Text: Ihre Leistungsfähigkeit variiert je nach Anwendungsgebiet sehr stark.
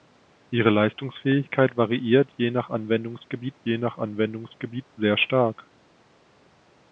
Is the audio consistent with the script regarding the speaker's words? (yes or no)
no